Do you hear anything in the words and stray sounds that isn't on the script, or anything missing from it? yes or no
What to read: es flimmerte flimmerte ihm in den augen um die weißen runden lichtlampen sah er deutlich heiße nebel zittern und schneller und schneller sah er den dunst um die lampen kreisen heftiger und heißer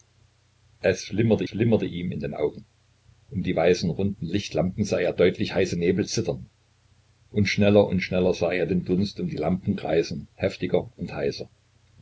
no